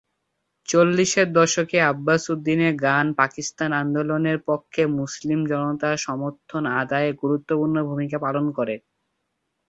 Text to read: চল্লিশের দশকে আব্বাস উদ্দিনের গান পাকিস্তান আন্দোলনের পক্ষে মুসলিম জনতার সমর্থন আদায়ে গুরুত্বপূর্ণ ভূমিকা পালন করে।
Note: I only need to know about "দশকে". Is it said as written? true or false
true